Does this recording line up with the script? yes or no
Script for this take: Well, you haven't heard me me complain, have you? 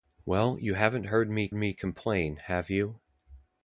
yes